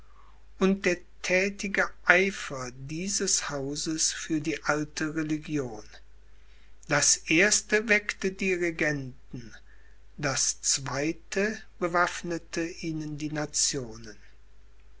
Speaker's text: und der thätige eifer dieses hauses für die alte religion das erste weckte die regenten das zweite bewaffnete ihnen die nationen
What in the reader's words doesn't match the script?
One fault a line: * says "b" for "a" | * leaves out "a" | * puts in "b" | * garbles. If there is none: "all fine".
all fine